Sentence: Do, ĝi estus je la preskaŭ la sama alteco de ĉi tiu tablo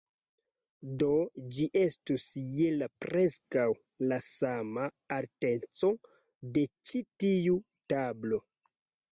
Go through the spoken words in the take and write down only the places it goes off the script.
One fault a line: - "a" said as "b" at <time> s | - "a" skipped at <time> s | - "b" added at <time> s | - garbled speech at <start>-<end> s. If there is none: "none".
none